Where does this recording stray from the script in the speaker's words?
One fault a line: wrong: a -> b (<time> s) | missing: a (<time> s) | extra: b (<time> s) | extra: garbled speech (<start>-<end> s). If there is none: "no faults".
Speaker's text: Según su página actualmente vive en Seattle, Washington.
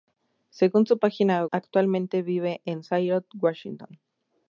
no faults